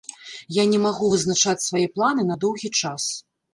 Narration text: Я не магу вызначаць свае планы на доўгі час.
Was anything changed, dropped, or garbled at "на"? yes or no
no